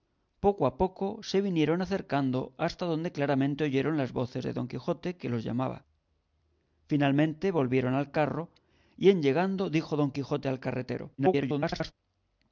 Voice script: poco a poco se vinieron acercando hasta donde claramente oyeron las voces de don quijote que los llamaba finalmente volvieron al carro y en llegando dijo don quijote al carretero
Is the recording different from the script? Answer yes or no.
yes